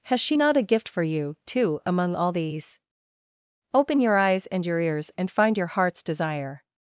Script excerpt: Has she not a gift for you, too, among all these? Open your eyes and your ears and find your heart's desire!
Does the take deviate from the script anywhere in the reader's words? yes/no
no